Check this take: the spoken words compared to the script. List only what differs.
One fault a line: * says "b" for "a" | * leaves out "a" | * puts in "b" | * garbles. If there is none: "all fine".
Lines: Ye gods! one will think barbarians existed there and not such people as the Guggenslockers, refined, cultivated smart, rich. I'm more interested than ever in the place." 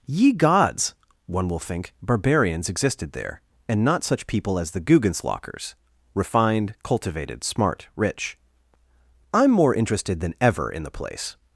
all fine